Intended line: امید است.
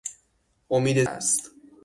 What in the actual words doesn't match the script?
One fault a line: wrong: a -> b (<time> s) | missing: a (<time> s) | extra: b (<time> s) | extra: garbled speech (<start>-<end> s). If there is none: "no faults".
no faults